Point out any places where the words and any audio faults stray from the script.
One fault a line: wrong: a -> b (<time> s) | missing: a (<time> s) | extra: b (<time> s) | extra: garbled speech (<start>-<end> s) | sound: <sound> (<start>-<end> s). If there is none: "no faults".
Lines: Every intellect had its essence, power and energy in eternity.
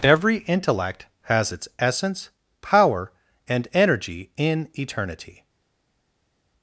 wrong: had -> has (1.2 s)